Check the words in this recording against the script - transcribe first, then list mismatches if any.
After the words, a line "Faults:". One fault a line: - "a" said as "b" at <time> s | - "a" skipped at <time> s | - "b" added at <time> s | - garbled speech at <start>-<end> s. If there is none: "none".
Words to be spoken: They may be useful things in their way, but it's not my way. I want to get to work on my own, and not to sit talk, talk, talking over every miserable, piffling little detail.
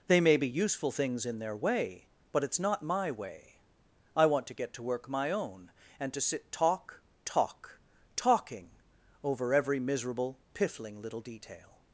They may be useful things in their way, but it's not my way. I want to get to work my own, and to sit talk, talk, talking over every miserable, piffling little detail.
Faults:
- "on" skipped at 5.1 s
- "not" skipped at 6.1 s